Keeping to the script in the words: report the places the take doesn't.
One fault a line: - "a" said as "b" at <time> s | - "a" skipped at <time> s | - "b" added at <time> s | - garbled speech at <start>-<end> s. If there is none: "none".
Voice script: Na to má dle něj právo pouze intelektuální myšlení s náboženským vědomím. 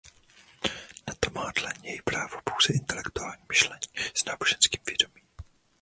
none